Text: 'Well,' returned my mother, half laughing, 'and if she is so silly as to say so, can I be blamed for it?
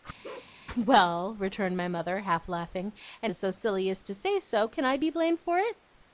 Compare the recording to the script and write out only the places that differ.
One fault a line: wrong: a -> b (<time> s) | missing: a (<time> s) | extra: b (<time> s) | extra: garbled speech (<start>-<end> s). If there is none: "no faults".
missing: if she (3.3 s)